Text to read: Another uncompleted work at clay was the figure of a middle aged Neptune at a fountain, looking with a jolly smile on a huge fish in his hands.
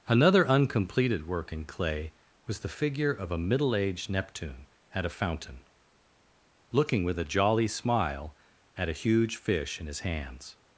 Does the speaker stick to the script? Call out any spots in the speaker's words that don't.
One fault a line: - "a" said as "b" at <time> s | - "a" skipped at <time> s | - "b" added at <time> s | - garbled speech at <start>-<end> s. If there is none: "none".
- "at" said as "in" at 1.5 s
- "on" said as "at" at 8.8 s